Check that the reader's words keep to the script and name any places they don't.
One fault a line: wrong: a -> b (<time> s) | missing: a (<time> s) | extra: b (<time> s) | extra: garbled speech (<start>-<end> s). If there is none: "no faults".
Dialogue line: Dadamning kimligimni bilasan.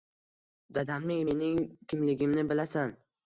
extra: mening (1.3 s)